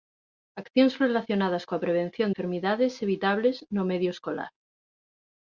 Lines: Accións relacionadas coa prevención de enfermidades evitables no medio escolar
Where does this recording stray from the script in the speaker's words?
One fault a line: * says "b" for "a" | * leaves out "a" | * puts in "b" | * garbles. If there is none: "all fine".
* leaves out "de"